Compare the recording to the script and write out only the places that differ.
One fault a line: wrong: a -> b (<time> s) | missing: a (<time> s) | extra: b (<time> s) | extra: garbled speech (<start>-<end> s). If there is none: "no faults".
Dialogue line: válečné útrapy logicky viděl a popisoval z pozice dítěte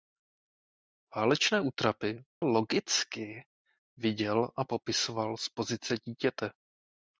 no faults